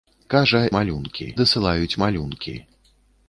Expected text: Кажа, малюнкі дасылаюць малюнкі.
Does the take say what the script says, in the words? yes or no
yes